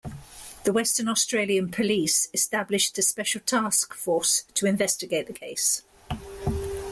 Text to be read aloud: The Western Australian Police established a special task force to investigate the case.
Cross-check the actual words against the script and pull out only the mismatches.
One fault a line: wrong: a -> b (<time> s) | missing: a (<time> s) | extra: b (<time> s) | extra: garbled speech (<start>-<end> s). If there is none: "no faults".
no faults